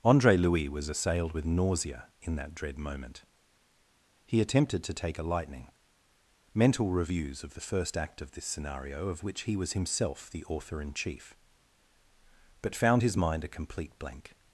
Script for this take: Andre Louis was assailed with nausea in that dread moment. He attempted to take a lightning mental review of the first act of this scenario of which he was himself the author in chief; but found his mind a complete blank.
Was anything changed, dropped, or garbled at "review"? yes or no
yes